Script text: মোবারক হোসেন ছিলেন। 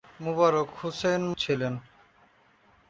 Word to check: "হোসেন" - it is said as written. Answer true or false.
true